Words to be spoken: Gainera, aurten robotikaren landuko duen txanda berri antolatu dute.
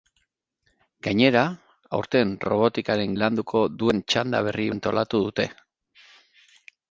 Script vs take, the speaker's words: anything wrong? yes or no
no